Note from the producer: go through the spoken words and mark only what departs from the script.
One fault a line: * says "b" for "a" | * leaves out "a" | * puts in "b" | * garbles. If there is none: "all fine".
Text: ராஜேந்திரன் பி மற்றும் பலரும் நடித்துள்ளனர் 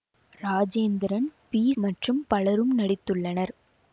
all fine